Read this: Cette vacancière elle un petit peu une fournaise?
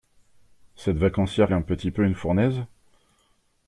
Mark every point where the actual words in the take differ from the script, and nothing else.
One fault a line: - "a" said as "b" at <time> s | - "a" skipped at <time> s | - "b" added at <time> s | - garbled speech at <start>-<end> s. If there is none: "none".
none